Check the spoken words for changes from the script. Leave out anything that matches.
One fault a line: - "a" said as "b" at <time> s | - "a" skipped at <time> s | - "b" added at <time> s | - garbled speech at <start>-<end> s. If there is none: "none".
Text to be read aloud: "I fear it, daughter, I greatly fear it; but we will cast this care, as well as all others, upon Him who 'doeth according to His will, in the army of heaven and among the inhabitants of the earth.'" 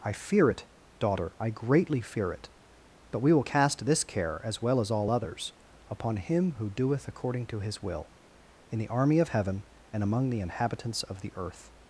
none